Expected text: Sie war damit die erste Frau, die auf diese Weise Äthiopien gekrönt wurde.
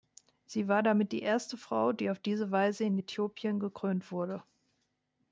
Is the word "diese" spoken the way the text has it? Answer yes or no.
yes